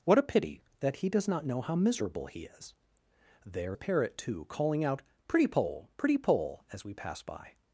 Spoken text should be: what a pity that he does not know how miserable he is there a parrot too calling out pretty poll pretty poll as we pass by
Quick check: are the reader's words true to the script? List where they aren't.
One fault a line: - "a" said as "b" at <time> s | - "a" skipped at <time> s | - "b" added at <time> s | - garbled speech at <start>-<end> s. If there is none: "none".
none